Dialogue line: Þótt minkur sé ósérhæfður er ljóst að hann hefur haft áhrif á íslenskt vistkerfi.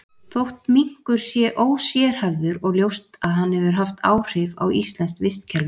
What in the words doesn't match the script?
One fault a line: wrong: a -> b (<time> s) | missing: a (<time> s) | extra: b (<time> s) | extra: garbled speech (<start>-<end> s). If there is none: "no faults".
no faults